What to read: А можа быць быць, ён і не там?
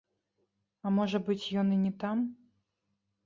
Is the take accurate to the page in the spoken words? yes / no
no